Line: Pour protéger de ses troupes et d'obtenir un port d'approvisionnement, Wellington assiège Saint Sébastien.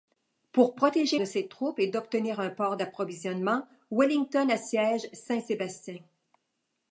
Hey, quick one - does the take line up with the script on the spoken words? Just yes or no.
yes